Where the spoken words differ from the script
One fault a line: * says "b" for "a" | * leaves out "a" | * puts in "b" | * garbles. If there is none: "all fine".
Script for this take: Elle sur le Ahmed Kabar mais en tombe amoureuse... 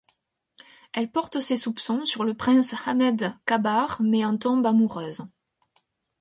* puts in "porte ses soupçons"
* puts in "prince"